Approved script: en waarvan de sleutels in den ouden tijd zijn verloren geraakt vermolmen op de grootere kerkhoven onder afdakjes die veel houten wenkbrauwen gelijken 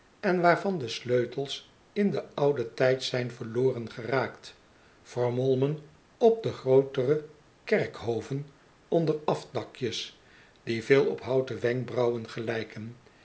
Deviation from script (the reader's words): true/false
true